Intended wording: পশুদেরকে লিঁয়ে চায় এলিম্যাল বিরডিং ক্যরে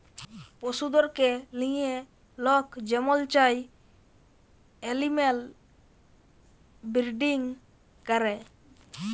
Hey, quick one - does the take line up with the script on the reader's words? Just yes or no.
no